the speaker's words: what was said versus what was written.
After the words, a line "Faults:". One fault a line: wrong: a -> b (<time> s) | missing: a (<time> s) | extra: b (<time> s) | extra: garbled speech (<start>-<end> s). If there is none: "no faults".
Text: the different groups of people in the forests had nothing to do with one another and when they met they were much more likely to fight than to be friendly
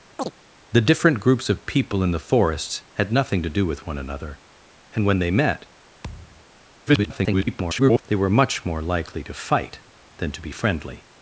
the different groups of people in the forests had nothing to do with one another and when they met [garbled] they were much more likely to fight than to be friendly
Faults:
extra: garbled speech (6.9-8.0 s)